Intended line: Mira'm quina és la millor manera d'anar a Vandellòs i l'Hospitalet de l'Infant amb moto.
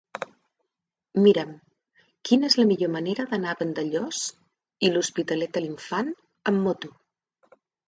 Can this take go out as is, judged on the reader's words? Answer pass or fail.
pass